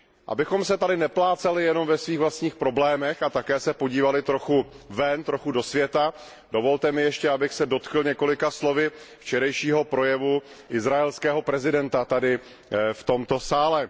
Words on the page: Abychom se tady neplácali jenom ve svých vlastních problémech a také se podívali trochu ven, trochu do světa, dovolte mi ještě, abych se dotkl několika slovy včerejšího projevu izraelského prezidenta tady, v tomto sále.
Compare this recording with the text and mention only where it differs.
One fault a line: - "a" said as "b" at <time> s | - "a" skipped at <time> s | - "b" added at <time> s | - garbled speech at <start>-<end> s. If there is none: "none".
none